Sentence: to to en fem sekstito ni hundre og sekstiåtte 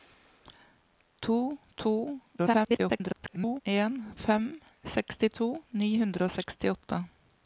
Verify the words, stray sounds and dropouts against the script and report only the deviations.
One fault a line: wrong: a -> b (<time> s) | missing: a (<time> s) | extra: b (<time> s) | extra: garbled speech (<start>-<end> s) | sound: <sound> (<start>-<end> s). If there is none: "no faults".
extra: garbled speech (2.4-3.6 s)